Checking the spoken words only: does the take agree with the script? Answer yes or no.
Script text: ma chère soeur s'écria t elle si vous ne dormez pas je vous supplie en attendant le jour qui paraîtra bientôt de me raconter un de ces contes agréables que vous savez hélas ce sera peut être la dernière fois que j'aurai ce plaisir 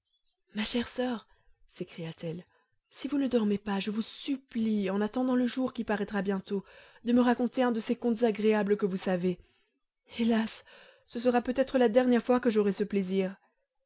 yes